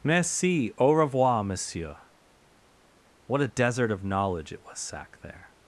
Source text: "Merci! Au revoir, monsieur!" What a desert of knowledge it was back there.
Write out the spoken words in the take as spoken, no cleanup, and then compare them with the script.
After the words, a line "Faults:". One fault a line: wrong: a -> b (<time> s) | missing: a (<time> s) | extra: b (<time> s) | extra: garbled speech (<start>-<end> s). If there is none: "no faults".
"Merci! Au revoir, monsieur!" What a desert of knowledge it was sack there.
Faults:
wrong: back -> sack (4.8 s)